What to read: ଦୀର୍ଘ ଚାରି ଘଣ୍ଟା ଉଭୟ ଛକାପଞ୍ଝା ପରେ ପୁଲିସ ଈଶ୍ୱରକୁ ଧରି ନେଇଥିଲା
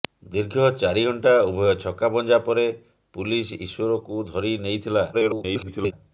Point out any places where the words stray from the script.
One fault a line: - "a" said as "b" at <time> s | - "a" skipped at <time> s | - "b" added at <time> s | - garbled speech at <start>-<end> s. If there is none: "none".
- garbled speech at 5.1-5.9 s